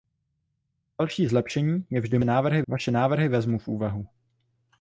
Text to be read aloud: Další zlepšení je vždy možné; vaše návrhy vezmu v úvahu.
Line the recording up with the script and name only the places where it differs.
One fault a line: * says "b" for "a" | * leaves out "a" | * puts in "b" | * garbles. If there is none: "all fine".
* says "návrhy" for "možné"